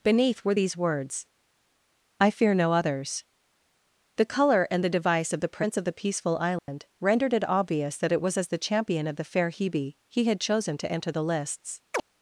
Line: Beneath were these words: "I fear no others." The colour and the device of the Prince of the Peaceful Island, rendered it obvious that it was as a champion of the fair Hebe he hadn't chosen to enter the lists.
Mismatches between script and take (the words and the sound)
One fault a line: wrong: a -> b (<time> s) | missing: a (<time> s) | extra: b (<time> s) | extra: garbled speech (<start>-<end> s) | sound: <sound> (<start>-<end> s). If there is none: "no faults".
sound: dropout (6.6-6.7 s)
wrong: a -> the (8.5 s)
wrong: hadn't -> had (10.2 s)
sound: chirp (11.9-12.0 s)